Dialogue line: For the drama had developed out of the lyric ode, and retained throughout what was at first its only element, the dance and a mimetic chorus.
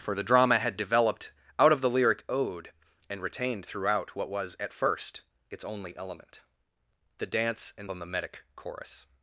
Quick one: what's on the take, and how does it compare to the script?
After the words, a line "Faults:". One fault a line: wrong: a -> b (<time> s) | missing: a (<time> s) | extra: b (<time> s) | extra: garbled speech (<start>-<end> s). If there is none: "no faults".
For the drama had developed out of the lyric ode, and retained throughout what was at first its only element, the dance and a mimetic chorus.
Faults:
no faults